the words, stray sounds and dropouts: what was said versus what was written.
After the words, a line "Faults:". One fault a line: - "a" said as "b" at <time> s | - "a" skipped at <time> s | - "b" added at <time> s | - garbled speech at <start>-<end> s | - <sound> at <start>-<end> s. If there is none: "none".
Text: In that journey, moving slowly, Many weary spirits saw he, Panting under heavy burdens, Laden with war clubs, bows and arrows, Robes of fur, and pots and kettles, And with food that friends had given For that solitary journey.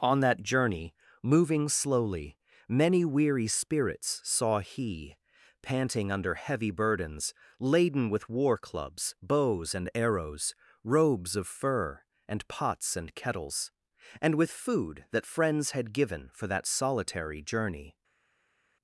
On that journey, moving slowly, Many weary spirits saw he, Panting under heavy burdens, Laden with war clubs, bows and arrows, Robes of fur, and pots and kettles, And with food that friends had given For that solitary journey.
Faults:
- "In" said as "On" at 0.0 s